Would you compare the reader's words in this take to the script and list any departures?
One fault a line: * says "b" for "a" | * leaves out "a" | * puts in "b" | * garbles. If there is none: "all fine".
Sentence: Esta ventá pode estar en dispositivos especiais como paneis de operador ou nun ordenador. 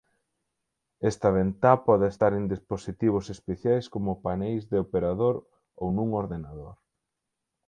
all fine